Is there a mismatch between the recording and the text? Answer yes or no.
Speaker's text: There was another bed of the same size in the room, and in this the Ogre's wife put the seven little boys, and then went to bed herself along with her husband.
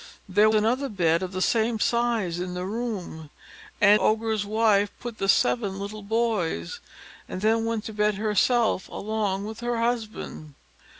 yes